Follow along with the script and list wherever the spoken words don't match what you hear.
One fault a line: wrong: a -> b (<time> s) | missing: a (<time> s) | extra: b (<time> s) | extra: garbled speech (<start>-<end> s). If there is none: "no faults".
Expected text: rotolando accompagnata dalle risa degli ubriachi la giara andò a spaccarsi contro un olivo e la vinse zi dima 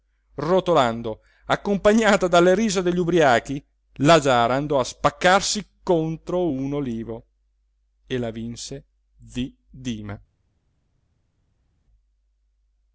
no faults